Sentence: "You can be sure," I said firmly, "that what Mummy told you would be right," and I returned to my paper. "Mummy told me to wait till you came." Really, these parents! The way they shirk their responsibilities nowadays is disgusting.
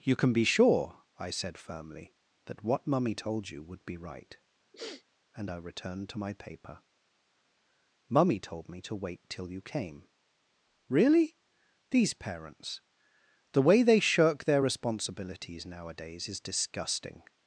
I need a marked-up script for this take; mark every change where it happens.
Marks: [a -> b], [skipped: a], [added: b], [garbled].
"You can be sure," I said firmly, "that what Mummy told you would be right," and I returned to my paper. "Mummy told me to wait till you came." Really, these parents! The way they shirk their responsibilities nowadays is disgusting.